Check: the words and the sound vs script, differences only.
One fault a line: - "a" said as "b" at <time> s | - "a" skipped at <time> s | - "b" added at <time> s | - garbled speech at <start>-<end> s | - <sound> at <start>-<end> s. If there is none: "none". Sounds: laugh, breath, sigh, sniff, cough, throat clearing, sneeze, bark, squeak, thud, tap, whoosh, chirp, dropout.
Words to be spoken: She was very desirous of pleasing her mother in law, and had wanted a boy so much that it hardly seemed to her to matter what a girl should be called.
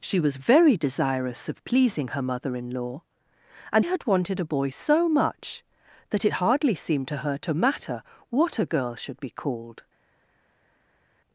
none